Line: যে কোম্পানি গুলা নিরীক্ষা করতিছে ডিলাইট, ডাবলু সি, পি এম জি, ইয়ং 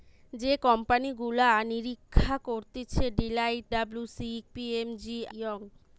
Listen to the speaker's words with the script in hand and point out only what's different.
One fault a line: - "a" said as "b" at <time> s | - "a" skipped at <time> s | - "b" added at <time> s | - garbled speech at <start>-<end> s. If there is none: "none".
none